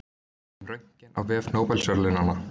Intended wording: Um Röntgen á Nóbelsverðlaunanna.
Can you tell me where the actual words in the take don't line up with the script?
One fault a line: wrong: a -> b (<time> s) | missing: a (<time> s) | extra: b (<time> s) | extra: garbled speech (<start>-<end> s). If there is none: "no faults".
extra: vef (1.2 s)